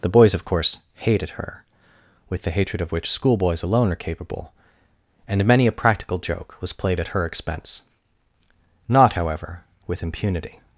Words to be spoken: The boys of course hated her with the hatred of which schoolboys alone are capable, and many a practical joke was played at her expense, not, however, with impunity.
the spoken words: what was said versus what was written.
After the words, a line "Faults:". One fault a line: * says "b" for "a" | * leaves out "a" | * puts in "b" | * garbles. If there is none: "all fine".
The boys of course hated her with the hatred of which schoolboys alone are capable, and many a practical joke was played at her expense, not, however, with impunity.
Faults:
all fine